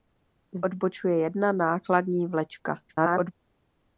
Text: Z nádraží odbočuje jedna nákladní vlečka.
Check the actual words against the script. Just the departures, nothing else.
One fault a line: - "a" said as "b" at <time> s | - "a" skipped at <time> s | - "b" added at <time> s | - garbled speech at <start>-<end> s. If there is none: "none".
- "nádraží" skipped at 0.7 s
- garbled speech at 2.9-3.3 s